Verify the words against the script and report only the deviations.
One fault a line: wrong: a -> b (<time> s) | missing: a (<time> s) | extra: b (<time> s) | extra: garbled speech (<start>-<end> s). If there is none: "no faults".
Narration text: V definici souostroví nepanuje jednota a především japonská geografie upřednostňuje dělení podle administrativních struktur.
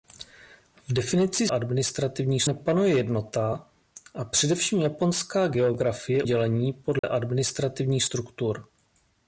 wrong: souostroví -> administrativních (1.5 s)
missing: upřednostňuje (6.2 s)